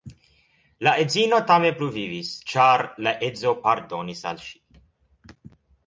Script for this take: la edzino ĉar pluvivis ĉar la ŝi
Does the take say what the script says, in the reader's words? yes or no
no